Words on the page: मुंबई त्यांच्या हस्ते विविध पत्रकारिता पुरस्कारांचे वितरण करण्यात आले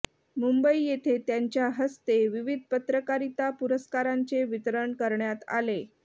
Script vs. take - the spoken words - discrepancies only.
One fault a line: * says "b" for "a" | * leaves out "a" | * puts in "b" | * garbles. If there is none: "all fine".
* puts in "येथे"